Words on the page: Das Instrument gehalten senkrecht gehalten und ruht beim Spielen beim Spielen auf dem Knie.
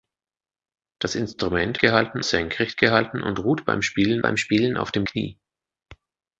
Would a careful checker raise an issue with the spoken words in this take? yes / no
no